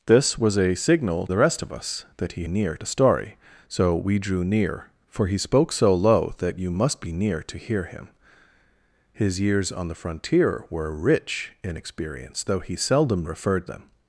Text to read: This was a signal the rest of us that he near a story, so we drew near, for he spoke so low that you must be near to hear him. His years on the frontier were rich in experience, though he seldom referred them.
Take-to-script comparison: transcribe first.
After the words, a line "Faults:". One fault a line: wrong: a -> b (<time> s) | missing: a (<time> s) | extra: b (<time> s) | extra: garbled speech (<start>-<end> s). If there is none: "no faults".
This was a signal the rest of us that he near a story, so we drew near, for he spoke so low that you must be near to hear him. His years on the frontier were rich in experience, though he seldom referred them.
Faults:
no faults